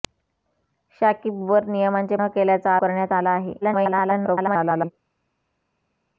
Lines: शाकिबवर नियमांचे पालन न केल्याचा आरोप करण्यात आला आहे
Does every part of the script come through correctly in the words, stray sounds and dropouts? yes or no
no